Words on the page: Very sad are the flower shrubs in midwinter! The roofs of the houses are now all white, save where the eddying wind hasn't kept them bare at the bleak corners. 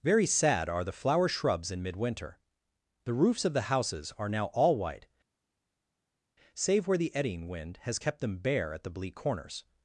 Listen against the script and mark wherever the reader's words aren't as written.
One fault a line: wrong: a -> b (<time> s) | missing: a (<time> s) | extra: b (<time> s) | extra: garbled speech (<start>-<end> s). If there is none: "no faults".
wrong: hasn't -> has (7.8 s)